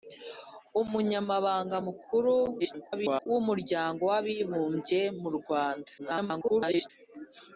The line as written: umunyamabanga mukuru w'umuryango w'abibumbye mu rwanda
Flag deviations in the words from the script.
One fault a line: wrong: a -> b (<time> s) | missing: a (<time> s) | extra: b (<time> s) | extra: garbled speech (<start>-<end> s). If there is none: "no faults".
extra: garbled speech (2.6-3.3 s)
extra: garbled speech (6.0-6.9 s)